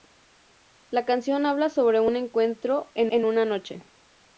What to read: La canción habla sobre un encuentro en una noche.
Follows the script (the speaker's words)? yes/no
no